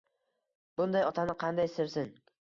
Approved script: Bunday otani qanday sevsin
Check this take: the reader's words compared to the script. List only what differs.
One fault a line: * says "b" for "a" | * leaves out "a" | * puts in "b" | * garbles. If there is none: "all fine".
all fine